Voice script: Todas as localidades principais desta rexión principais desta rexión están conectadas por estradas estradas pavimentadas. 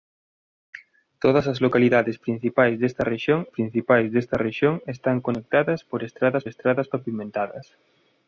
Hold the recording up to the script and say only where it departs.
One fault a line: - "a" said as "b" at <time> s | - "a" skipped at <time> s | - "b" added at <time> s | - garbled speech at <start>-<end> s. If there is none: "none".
none